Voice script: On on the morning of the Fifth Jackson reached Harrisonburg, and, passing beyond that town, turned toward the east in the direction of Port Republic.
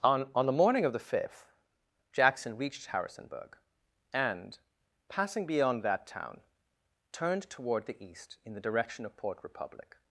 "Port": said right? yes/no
yes